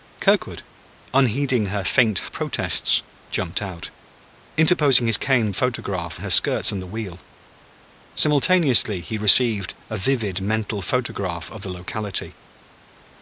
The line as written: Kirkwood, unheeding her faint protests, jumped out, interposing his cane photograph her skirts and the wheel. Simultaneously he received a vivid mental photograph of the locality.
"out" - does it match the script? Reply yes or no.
yes